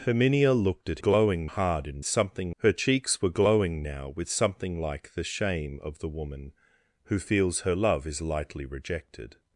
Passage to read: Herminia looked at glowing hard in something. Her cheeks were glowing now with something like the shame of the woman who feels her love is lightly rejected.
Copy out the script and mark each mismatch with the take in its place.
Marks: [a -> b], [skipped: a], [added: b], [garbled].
Herminia looked at glowing hard in something. Her cheeks were glowing now with something like the shame of the woman who feels her love is lightly rejected.